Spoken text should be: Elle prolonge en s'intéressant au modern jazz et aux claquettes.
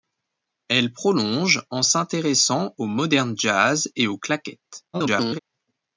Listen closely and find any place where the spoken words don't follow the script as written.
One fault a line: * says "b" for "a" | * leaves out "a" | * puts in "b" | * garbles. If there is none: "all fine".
* garbles